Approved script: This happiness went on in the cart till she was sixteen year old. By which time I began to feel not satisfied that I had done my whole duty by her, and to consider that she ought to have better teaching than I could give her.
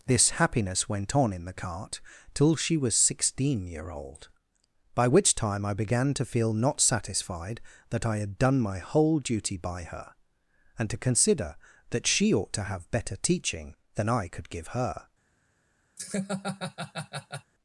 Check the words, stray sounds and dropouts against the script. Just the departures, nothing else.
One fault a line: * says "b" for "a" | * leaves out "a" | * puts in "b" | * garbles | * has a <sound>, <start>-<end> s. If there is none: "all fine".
* has a laugh, 16.0-17.5 s